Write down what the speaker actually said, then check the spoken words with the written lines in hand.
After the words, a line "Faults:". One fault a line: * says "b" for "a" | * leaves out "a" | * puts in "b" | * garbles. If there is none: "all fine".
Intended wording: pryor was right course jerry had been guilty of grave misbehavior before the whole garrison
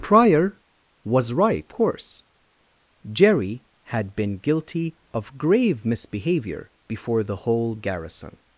pryor was right course jerry had been guilty of grave misbehavior before the whole garrison
Faults:
all fine